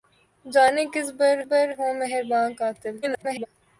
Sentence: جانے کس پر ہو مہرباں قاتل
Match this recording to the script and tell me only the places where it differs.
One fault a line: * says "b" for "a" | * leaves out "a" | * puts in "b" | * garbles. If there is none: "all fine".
* puts in "پر"
* garbles